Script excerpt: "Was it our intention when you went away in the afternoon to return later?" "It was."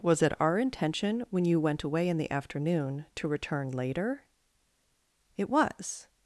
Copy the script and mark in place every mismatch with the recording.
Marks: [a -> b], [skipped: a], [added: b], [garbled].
"Was it our intention when you went away in the afternoon to return later?" "It was."